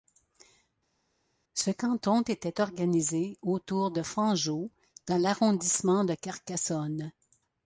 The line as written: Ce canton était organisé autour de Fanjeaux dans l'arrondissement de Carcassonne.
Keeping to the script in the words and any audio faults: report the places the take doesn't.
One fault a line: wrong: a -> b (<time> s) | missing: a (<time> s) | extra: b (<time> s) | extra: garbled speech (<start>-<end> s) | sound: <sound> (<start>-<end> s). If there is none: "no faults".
no faults